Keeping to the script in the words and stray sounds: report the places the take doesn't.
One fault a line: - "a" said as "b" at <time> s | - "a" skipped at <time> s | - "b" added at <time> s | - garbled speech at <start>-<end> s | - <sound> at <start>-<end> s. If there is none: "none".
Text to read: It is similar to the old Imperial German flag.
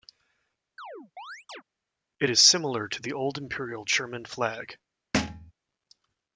- chirp at 0.8-1.6 s
- thud at 5.1-5.5 s